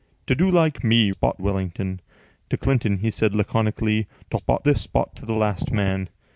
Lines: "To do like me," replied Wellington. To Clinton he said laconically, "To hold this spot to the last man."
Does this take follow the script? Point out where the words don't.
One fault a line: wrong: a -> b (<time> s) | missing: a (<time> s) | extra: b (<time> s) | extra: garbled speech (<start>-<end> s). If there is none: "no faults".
wrong: replied -> spot (1.1 s)
wrong: hold -> spot (4.3 s)